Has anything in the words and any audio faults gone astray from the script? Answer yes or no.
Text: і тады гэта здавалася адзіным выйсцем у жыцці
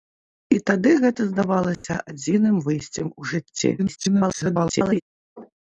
yes